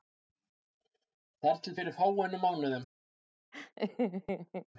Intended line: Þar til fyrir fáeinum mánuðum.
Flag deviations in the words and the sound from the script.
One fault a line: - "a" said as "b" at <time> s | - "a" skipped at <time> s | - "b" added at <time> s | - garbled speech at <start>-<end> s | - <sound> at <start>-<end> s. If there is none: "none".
- laugh at 3.5-4.7 s